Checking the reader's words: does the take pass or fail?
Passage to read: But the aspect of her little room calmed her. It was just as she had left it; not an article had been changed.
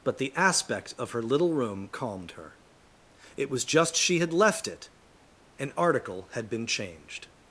fail